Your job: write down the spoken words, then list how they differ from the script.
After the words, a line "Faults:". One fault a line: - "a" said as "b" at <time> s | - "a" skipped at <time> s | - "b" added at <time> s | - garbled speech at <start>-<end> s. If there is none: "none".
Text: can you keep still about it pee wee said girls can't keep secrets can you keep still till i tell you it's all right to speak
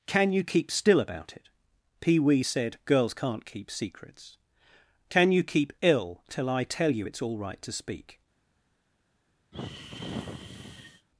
can you keep still about it pee wee said girls can't keep secrets can you keep ill till i tell you it's all right to speak
Faults:
- "still" said as "ill" at 5.8 s